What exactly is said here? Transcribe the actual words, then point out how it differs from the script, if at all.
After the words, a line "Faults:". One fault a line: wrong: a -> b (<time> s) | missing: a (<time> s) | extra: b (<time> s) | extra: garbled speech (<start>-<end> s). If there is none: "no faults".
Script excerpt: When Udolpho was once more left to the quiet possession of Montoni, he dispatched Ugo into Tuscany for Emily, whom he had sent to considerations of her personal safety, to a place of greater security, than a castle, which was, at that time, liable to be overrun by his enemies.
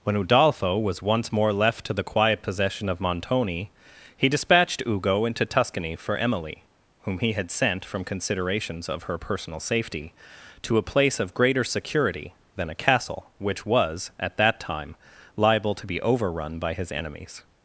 When Udolpho was once more left to the quiet possession of Montoni, he dispatched Ugo into Tuscany for Emily, whom he had sent from considerations of her personal safety, to a place of greater security, than a castle, which was, at that time, liable to be overrun by his enemies.
Faults:
wrong: to -> from (7.8 s)